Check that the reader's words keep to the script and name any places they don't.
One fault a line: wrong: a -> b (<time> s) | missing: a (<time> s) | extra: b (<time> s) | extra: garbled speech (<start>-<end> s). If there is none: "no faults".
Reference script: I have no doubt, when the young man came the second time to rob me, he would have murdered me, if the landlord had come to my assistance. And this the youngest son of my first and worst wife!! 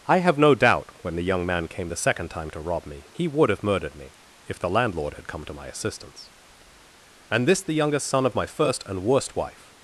no faults